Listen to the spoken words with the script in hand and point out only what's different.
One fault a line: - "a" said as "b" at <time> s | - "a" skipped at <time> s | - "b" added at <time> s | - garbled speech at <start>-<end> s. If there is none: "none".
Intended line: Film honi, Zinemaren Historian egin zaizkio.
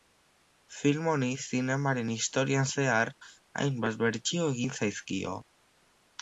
- "zehar hainbat bertsio" added at 2.8 s